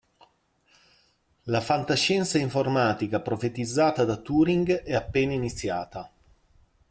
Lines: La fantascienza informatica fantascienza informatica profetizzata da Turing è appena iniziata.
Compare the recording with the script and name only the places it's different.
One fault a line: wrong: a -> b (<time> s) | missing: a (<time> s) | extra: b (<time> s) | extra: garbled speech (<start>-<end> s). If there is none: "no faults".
missing: fantascienza informatica (3.2 s)